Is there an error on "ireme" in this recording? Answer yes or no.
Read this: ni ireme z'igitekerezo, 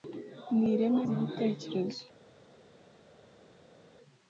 no